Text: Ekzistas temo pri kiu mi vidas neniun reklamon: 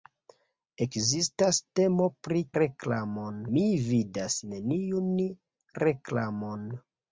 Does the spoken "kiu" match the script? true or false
false